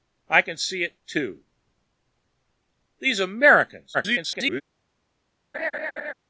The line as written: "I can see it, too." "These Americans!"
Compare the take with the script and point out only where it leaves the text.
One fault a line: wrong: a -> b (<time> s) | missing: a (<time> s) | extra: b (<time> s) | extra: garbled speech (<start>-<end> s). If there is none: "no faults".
extra: garbled speech (3.9-4.6 s)